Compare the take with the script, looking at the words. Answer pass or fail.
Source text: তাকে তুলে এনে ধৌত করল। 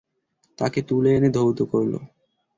pass